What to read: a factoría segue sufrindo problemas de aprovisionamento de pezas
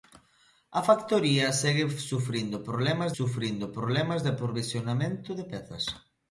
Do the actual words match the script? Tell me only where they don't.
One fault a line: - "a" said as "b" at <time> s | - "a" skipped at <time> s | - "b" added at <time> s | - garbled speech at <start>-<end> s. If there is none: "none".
- "sufrindo problemas" added at 3.2 s